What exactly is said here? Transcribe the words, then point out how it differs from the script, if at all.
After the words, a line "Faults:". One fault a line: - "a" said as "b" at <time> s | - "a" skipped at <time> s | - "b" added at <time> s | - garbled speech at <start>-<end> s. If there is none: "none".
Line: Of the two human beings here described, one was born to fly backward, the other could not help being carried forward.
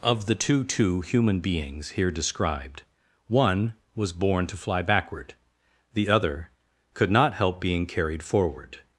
Of the two two human beings here described, one was born to fly backward, the other could not help being carried forward.
Faults:
- "two" added at 0.6 s